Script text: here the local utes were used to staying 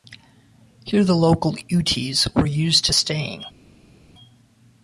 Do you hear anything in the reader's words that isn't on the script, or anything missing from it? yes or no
no